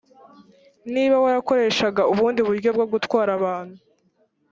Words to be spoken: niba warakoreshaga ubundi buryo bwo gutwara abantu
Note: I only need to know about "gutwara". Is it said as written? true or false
true